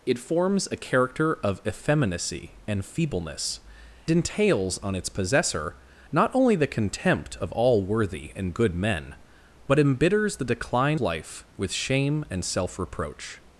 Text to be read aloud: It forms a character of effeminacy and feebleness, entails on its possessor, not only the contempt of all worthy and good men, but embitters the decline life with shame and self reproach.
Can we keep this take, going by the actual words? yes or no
yes